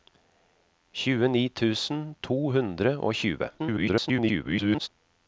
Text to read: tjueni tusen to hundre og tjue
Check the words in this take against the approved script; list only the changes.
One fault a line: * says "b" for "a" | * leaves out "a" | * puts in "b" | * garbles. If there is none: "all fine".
* garbles